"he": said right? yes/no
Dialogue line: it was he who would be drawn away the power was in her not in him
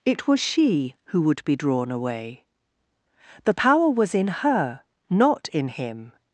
no